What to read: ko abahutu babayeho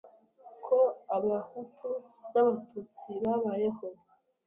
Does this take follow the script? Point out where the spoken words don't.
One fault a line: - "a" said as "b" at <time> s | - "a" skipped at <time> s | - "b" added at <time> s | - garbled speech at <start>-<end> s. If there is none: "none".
- "n'abatutsi" added at 2.3 s